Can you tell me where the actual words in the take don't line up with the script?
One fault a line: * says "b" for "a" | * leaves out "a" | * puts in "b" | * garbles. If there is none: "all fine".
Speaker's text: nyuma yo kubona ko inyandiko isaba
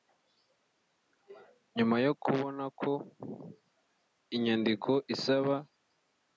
all fine